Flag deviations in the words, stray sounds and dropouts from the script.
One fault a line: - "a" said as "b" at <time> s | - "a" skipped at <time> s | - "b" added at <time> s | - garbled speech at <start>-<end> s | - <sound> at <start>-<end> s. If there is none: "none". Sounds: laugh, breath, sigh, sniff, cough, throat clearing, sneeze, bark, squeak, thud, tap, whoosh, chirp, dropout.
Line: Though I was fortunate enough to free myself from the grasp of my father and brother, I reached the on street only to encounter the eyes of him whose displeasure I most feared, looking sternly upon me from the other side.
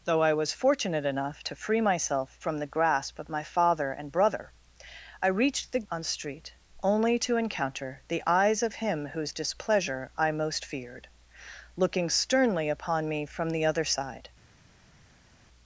none